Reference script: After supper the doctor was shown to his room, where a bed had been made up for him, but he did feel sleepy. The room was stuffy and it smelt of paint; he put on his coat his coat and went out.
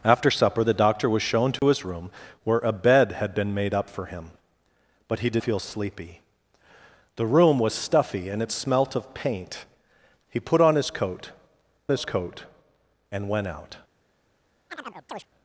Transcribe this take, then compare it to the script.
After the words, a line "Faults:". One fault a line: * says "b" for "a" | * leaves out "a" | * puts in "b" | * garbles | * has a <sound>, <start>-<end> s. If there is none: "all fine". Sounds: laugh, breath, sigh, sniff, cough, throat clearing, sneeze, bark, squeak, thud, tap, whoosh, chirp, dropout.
After supper the doctor was shown to his room, where a bed had been made up for him, but he did feel sleepy. The room was stuffy and it smelt of paint; he put on his coat his coat and went out.
Faults:
* has a dropout, 1.6-1.6 s
* has a chirp, 14.7-15.3 s